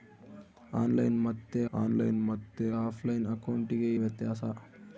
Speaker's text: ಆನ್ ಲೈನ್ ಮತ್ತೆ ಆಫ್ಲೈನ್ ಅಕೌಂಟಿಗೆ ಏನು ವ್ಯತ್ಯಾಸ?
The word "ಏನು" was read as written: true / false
false